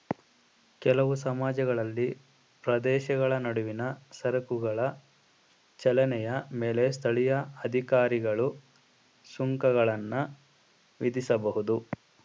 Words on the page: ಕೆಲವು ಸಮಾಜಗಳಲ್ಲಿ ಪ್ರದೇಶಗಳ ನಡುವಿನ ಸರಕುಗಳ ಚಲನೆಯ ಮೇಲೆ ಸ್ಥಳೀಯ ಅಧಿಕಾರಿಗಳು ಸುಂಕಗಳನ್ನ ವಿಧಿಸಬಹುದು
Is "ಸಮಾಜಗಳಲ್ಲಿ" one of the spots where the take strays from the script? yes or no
no